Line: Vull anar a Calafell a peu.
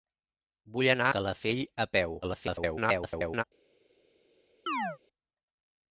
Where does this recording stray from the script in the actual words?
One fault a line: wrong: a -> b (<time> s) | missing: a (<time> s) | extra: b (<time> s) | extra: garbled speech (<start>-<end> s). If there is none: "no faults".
missing: a (1.1 s)
extra: garbled speech (2.2-3.4 s)